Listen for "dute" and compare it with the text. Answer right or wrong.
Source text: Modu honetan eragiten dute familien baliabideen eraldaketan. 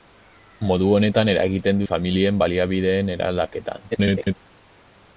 wrong